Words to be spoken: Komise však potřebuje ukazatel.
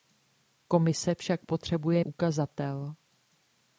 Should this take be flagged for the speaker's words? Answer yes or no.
no